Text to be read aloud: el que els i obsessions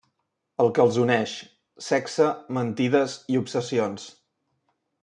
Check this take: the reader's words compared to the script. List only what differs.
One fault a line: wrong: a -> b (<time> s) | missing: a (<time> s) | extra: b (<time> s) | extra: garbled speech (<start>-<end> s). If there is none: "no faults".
extra: uneix sexe mentides (1.0 s)